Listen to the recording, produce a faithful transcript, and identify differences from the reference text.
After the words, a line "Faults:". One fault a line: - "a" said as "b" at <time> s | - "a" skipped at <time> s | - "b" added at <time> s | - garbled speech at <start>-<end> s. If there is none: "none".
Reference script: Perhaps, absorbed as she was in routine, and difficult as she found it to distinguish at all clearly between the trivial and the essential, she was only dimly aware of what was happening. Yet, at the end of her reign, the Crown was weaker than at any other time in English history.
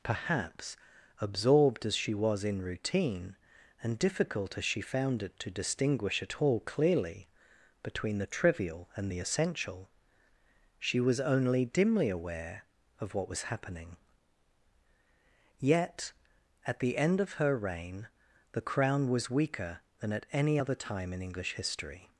Perhaps, absorbed as she was in routine, and difficult as she found it to distinguish at all clearly between the trivial and the essential, she was only dimly aware of what was happening. Yet, at the end of her reign, the Crown was weaker than at any other time in English history.
Faults:
none